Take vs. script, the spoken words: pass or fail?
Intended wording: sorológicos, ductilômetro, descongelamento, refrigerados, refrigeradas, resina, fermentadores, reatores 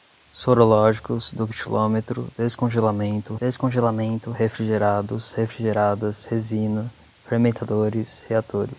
fail